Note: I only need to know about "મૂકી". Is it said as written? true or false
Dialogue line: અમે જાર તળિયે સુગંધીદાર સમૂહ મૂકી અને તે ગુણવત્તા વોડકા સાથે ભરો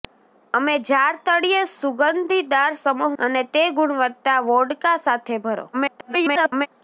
false